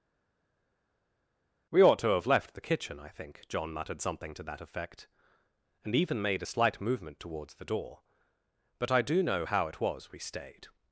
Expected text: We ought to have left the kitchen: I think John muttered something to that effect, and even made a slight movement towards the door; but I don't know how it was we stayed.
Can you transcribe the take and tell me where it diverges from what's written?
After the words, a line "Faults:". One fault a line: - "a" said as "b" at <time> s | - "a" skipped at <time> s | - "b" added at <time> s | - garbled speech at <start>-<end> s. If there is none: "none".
We ought to have left the kitchen: I think John muttered something to that effect, and even made a slight movement towards the door; but I do know how it was we stayed.
Faults:
- "don't" said as "do" at 9.0 s